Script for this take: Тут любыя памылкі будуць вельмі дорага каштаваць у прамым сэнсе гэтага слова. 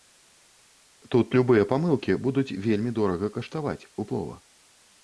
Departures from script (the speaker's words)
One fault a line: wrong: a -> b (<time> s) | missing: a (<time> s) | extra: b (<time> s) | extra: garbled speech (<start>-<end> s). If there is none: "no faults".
missing: прамым сэнсе гэтага (4.1 s)